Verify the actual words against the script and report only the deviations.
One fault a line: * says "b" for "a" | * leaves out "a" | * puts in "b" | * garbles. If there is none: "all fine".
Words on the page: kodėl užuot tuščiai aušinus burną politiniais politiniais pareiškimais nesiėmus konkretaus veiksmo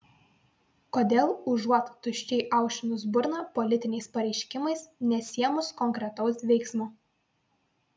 * leaves out "politiniais"